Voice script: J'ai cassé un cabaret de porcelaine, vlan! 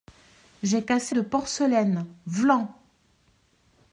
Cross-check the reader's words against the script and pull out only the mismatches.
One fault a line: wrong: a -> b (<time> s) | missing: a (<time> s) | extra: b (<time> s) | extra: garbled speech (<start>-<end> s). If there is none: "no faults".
missing: un cabaret (1.1 s)